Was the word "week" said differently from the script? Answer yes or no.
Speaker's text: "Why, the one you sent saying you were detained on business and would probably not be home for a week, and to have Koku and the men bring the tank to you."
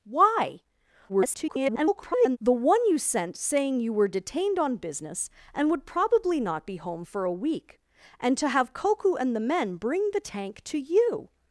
no